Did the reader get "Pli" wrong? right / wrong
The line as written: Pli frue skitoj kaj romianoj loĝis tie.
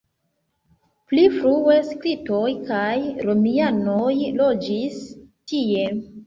right